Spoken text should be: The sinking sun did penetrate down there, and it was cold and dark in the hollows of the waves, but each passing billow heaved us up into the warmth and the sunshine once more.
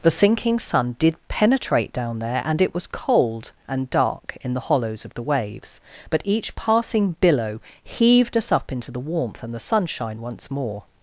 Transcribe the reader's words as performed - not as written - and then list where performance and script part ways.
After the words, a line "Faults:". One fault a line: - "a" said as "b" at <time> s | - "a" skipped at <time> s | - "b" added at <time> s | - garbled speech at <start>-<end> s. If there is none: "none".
The sinking sun did penetrate down there, and it was cold and dark in the hollows of the waves, but each passing billow heaved us up into the warmth and the sunshine once more.
Faults:
none